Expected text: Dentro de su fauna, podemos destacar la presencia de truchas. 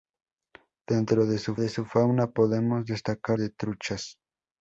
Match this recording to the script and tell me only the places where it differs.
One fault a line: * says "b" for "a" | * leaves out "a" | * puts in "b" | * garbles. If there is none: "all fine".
* puts in "de su"
* leaves out "la presencia"